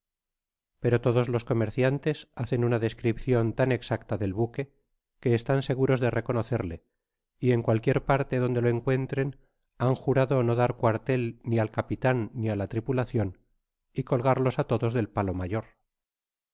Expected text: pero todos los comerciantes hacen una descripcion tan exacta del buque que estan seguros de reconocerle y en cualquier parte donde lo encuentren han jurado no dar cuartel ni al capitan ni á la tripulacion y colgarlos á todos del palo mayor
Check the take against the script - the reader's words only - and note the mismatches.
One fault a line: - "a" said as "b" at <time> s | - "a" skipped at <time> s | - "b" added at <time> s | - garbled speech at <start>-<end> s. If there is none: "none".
none